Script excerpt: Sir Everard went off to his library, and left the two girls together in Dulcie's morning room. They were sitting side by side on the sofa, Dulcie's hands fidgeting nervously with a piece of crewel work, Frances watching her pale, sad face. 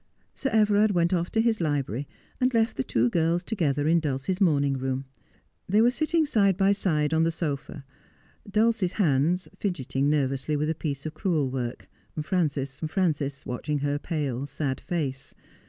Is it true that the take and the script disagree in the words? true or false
true